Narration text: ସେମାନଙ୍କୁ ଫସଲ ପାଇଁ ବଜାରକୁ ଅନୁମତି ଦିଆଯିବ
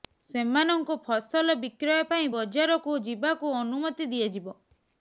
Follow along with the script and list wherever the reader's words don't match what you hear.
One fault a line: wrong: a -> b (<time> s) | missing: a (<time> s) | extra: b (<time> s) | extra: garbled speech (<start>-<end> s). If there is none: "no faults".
extra: ବିକ୍ରୟ (1.6 s)
extra: ଯିବାକୁ (3.0 s)